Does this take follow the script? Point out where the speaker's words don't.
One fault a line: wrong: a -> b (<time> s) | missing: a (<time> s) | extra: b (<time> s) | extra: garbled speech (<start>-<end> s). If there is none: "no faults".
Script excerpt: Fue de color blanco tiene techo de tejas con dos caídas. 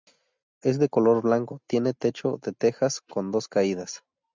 wrong: Fue -> Es (0.6 s)